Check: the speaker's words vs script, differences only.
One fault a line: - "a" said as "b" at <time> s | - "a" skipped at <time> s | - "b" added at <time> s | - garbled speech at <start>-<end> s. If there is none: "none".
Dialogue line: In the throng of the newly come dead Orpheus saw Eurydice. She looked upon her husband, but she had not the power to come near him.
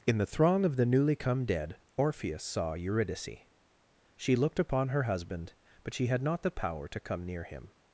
none